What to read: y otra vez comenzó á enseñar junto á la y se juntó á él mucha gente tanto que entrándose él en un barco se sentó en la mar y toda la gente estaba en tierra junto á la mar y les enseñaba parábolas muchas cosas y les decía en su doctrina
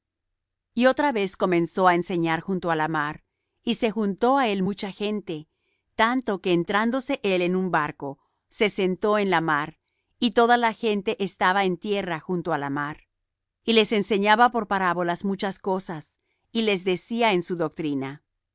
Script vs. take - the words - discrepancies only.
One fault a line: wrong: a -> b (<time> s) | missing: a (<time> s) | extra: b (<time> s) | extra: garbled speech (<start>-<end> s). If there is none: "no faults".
extra: mar (2.9 s)
extra: por (14.5 s)